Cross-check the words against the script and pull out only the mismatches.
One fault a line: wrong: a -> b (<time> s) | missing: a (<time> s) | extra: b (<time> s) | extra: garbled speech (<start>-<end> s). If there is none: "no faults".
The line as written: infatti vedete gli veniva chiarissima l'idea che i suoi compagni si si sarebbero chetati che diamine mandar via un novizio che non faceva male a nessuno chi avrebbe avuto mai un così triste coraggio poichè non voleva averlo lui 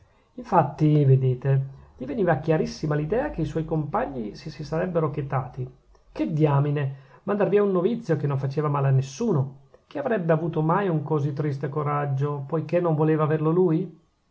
no faults